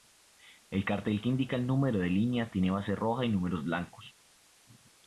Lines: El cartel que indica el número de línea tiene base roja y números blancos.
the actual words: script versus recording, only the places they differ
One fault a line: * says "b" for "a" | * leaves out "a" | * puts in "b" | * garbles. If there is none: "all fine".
all fine